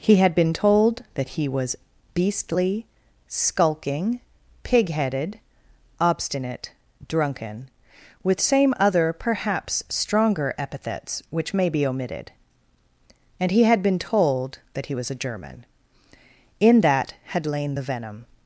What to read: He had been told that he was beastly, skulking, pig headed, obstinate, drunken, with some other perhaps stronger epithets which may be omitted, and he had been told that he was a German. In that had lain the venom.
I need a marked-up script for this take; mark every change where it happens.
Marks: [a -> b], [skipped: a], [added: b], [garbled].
He had been told that he was beastly, skulking, pig headed, obstinate, drunken, with [some -> same] other perhaps stronger epithets which may be omitted, and he had been told that he was a German. In that had lain the venom.